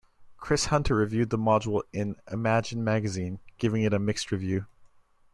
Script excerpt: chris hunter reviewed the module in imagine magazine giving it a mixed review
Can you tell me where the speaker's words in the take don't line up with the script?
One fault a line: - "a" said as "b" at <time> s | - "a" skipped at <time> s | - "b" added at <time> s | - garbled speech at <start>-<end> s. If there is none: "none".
none